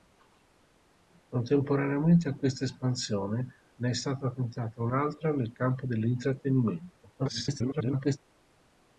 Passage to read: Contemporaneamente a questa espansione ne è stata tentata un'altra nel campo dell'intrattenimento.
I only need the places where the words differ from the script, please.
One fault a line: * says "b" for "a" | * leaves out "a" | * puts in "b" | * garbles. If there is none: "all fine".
* garbles